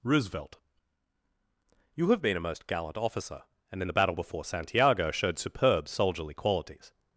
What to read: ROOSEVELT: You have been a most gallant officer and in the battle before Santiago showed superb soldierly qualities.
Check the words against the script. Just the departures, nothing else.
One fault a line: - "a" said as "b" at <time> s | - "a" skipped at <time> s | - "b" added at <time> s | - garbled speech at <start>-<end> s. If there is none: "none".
none